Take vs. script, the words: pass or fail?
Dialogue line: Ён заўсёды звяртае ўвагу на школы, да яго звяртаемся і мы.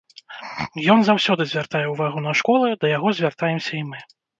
pass